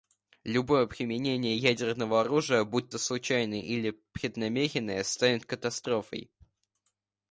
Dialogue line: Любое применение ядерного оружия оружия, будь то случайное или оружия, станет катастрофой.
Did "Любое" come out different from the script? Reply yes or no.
no